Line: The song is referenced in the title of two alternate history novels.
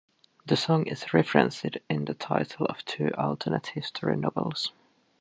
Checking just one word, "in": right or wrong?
right